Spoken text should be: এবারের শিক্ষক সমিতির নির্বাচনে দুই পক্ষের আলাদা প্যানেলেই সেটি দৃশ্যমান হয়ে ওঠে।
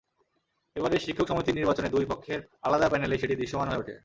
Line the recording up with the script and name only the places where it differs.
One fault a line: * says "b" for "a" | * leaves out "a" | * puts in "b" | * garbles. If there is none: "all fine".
all fine